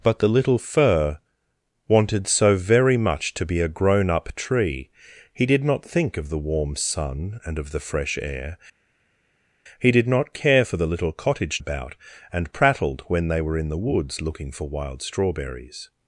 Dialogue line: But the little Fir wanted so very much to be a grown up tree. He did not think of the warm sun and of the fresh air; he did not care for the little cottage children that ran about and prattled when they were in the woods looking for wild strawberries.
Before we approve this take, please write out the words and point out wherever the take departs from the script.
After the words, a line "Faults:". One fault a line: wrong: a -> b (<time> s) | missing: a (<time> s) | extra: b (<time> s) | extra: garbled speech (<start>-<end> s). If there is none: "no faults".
But the little Fir wanted so very much to be a grown up tree. He did not think of the warm sun and of the fresh air; he did not care for the little cottage about and prattled when they were in the woods looking for wild strawberries.
Faults:
missing: children that ran (11.6 s)